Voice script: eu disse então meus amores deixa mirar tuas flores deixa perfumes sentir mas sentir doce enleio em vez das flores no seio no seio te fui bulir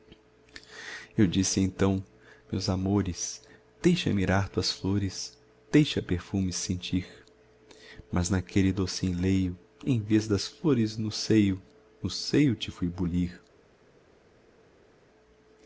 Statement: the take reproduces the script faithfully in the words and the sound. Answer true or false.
false